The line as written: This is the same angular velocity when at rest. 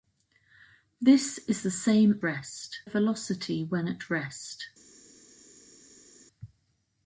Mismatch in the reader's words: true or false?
true